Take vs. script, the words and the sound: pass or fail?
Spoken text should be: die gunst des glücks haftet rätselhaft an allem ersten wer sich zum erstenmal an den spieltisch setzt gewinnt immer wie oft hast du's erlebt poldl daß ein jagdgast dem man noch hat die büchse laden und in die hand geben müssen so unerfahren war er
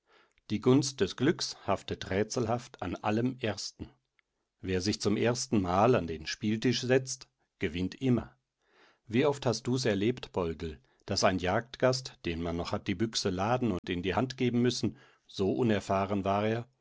fail